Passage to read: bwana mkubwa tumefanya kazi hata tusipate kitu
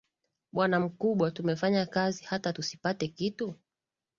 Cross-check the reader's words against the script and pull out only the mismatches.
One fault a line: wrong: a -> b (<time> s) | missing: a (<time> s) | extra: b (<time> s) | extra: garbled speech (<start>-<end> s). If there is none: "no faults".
no faults